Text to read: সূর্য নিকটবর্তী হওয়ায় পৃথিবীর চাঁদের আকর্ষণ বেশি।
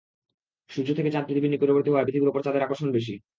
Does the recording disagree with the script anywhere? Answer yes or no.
yes